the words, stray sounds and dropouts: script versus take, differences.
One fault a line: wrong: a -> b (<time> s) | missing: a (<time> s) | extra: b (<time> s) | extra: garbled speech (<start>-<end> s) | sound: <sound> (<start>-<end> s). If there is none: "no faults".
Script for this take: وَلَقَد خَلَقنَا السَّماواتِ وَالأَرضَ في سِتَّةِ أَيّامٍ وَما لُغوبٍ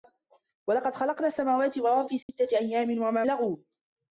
sound: dropout (2.2-2.3 s)